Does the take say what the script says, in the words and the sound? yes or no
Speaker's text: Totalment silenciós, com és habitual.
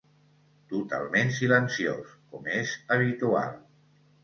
yes